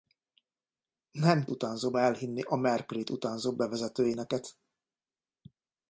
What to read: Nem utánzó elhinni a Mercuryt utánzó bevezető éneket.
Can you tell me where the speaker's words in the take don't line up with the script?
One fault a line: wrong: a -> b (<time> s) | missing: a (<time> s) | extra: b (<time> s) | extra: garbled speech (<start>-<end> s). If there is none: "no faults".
no faults